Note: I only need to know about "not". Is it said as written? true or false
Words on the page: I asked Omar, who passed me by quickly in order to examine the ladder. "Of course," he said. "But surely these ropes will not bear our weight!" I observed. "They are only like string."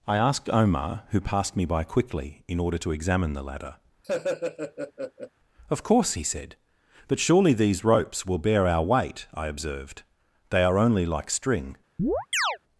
false